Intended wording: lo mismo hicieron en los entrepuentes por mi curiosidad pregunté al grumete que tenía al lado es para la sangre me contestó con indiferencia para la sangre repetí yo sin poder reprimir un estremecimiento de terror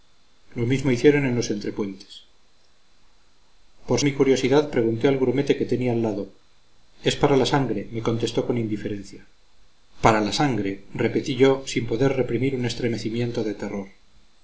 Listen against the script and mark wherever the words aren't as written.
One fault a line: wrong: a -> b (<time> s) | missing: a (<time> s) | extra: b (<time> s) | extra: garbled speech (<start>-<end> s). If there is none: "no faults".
no faults